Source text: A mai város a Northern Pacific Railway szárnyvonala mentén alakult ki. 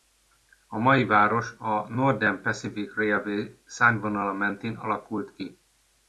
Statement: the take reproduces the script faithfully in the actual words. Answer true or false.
true